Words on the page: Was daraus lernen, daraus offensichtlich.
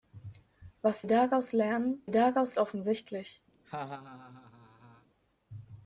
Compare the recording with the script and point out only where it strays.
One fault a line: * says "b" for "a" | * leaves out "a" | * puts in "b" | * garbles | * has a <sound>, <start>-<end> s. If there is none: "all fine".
* has a laugh, 3.5-5.1 s